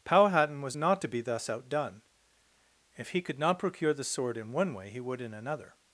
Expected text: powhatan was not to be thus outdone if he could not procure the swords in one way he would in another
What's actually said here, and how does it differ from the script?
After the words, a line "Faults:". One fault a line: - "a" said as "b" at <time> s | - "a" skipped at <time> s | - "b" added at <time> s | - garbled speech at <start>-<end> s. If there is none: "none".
powhatan was not to be thus outdone if he could not procure the sword in one way he would in another
Faults:
- "swords" said as "sword" at 4.0 s